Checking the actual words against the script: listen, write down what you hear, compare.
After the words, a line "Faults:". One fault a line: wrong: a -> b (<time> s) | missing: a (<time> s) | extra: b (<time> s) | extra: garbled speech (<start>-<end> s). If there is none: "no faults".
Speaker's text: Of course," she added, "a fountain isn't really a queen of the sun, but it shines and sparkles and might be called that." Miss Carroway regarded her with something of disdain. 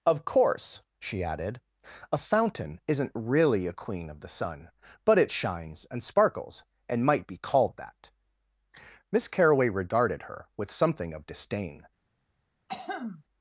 Of course," she added, "a fountain isn't really a queen of the sun, but it shines and sparkles and might be called that." Miss Carroway regarded her with something of disdain.
Faults:
no faults